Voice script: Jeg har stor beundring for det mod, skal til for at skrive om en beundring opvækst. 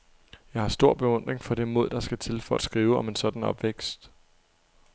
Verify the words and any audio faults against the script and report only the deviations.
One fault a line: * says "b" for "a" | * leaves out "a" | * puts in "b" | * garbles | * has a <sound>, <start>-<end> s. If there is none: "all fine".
* puts in "der"
* says "sådan" for "beundring"